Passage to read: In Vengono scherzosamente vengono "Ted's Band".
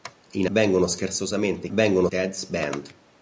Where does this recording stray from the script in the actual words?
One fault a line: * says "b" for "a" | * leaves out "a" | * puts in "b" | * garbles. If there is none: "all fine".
all fine